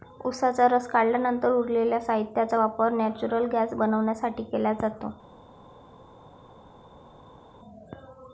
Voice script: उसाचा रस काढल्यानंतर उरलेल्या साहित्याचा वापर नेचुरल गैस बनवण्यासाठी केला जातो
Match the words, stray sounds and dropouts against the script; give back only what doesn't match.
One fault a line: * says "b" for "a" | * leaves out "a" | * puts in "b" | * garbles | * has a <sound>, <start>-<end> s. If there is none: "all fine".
all fine